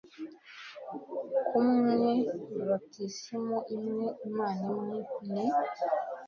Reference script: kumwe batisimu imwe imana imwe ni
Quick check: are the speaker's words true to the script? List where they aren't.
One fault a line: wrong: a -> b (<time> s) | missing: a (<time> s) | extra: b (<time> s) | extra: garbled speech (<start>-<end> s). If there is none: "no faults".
no faults